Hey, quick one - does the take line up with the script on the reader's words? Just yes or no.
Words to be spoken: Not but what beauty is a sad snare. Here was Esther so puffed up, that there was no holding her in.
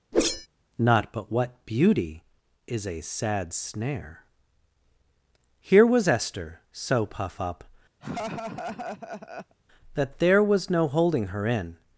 no